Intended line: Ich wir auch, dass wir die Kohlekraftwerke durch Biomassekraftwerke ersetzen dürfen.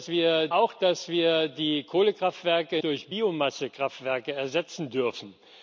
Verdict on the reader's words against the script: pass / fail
pass